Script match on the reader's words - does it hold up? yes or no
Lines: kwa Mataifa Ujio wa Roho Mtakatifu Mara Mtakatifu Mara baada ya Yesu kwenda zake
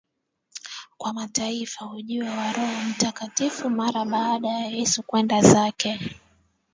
no